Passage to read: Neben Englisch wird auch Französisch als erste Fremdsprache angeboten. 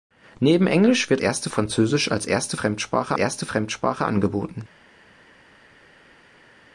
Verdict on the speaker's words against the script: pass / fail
fail